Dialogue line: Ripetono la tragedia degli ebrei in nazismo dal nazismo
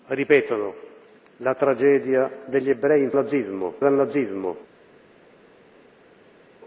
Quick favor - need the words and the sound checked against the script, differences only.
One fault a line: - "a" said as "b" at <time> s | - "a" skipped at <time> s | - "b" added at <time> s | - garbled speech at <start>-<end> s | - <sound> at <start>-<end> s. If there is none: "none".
none